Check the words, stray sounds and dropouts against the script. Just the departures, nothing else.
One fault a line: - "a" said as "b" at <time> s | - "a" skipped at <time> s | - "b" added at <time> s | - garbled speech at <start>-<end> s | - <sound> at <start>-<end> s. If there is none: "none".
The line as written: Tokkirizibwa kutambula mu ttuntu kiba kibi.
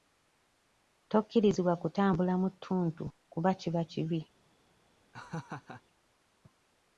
- "kuba" added at 3.3 s
- laugh at 5.1-5.8 s